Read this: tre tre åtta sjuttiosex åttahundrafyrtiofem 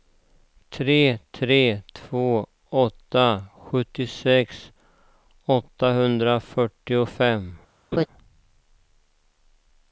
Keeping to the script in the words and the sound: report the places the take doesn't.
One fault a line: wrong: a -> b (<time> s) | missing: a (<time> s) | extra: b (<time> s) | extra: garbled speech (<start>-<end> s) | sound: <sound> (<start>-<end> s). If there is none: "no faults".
extra: två (1.9 s)
sound: laugh (7.9-8.1 s)